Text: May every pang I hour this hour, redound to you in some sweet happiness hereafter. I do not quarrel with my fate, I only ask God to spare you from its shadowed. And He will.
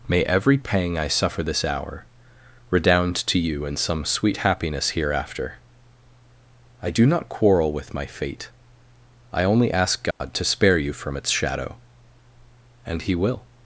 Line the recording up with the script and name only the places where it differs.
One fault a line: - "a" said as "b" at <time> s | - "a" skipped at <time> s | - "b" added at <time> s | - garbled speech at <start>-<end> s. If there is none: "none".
- "hour" said as "suffer" at 1.1 s
- "shadowed" said as "shadow" at 11.3 s